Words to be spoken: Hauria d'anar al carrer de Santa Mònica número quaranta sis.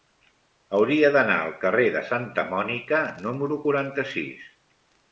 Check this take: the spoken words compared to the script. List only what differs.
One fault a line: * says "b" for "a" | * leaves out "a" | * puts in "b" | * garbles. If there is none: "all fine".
all fine